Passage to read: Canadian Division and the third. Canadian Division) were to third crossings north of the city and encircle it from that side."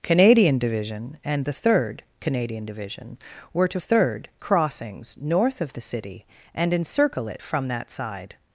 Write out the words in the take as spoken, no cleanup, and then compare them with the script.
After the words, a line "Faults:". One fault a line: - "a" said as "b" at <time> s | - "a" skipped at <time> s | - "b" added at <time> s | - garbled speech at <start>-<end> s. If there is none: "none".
Canadian Division and the third. Canadian Division) were to third crossings north of the city and encircle it from that side."
Faults:
none